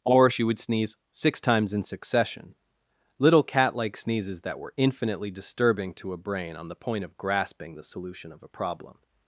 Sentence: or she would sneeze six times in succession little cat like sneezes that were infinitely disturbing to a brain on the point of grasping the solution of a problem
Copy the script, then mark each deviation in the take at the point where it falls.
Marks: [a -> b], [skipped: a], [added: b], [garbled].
or she would sneeze six times in succession little cat like sneezes that were infinitely disturbing to a brain on the point of grasping the solution of a problem